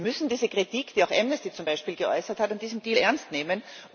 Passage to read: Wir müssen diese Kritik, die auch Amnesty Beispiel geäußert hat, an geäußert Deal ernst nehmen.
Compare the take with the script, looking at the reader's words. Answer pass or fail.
fail